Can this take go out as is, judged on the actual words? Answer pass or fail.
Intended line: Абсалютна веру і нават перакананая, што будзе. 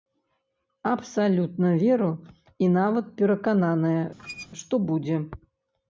pass